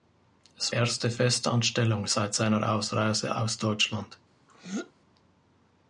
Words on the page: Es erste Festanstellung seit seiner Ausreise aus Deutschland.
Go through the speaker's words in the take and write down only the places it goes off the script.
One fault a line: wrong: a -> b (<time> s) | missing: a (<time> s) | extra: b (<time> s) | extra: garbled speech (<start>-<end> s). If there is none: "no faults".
no faults